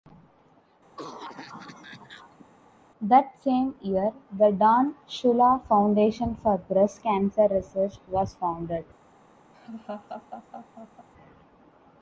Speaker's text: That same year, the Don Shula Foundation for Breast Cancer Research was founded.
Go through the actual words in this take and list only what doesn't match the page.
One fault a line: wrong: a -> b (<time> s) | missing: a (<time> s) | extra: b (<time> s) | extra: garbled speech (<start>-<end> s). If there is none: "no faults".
no faults